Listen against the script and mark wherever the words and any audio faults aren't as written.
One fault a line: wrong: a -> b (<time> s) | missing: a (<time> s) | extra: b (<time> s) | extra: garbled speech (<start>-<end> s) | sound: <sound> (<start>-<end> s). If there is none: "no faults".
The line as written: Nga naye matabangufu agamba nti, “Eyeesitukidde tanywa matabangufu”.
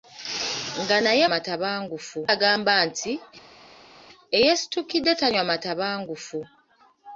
no faults